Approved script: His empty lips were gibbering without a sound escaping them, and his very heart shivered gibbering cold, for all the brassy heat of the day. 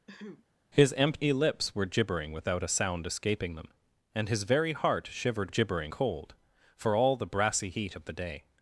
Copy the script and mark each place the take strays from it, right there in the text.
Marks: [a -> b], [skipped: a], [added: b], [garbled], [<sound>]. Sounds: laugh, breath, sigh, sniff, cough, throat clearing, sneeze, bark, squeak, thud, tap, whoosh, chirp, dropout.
[throat clearing] His empty lips were gibbering without a sound escaping them, and his very heart shivered gibbering cold, for all the brassy heat of the day.